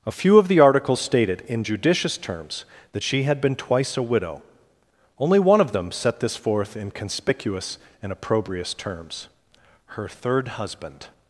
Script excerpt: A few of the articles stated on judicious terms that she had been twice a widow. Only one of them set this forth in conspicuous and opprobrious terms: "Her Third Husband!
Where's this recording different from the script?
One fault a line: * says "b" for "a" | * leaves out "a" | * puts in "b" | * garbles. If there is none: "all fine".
* says "in" for "on"